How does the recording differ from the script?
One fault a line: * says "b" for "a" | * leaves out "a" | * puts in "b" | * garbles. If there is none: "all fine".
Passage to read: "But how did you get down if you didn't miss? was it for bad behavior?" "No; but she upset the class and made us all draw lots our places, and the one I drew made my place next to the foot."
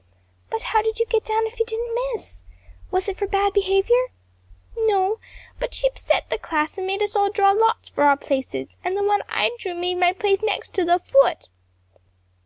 * puts in "for"